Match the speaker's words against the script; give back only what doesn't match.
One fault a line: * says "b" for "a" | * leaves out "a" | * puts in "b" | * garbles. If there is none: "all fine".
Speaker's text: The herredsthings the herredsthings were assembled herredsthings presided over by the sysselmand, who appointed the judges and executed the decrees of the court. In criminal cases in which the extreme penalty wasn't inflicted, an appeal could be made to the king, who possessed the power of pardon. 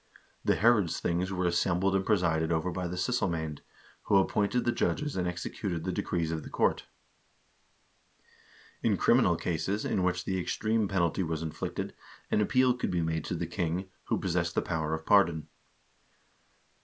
* leaves out "the herredsthings"
* says "and" for "herredsthings"
* says "was" for "wasn't"